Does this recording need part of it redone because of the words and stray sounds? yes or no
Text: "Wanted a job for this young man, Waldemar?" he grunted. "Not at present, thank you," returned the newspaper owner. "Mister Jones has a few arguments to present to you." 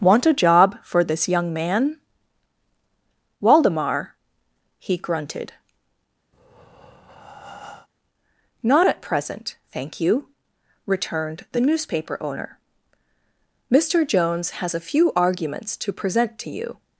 yes